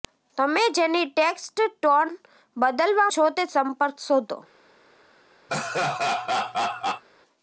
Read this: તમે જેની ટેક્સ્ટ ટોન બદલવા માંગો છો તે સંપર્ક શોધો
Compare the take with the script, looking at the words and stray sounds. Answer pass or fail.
fail